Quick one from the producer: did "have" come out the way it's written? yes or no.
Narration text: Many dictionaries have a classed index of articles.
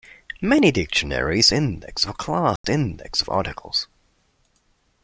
no